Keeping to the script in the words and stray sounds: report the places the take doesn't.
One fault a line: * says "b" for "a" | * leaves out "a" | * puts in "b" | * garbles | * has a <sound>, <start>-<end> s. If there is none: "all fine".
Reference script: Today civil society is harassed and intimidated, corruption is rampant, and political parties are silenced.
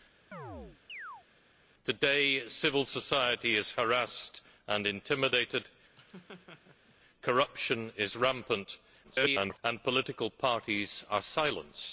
* has a chirp, 0.3-1.3 s
* has a laugh, 6.0-7.0 s
* garbles